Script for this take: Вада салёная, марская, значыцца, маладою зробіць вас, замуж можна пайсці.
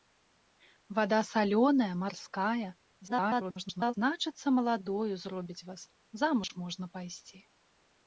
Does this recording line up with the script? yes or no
no